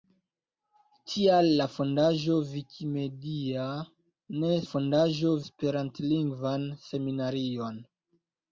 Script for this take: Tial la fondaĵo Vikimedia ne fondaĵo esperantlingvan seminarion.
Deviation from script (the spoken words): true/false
false